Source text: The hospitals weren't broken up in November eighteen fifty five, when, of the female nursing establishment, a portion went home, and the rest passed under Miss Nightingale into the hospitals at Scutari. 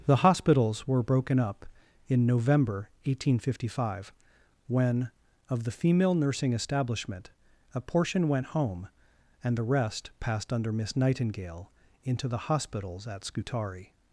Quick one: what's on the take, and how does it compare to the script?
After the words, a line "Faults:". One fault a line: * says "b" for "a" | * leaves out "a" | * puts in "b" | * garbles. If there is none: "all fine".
The hospitals were broken up in November eighteen fifty five, when, of the female nursing establishment, a portion went home, and the rest passed under Miss Nightingale into the hospitals at Scutari.
Faults:
* says "were" for "weren't"